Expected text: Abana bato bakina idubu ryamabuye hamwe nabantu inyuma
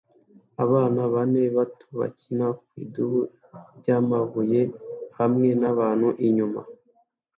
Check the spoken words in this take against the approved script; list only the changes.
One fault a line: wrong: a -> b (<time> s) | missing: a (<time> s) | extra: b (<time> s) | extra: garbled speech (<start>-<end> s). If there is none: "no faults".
extra: bane (1.1 s)
extra: ku (2.6 s)